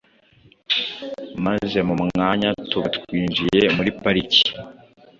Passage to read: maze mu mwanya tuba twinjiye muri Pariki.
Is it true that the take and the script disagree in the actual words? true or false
false